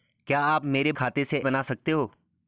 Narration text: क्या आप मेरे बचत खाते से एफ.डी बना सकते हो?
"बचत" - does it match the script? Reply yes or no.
no